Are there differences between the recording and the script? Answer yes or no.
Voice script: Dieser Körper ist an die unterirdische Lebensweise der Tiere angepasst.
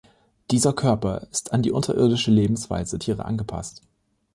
yes